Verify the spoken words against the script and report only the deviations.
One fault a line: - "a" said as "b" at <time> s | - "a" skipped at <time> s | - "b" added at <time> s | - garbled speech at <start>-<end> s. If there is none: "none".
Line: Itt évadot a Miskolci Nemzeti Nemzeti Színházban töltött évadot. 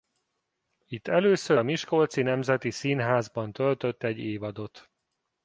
- "évadot" said as "először" at 1.1 s
- "Nemzeti" skipped at 2.7 s
- "egy" added at 4.0 s